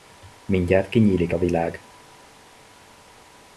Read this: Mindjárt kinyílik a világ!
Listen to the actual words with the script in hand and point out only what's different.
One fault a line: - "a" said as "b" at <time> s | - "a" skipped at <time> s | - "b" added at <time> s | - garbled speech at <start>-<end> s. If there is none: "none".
none